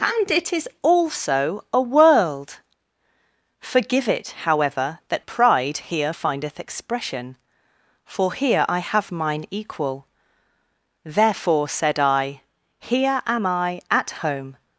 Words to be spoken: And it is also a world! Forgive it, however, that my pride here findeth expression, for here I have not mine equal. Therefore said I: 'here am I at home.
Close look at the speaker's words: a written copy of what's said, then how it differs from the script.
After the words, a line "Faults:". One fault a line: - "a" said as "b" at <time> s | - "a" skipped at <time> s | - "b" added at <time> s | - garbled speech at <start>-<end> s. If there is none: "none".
And it is also a world! Forgive it, however, that pride here findeth expression, for here I have mine equal. Therefore said I: 'here am I at home.
Faults:
- "my" skipped at 5.2 s
- "not" skipped at 9.1 s